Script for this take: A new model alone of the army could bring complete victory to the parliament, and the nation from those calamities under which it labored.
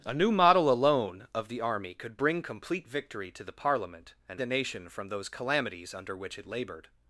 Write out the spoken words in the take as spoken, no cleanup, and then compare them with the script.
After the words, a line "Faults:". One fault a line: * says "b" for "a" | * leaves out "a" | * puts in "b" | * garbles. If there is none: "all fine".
A new model alone of the army could bring complete victory to the parliament, and the nation from those calamities under which it labored.
Faults:
all fine